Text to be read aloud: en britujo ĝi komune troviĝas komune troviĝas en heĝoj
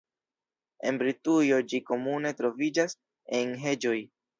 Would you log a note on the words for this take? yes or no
yes